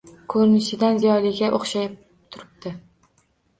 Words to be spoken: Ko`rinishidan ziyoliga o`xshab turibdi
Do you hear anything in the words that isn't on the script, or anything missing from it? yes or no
no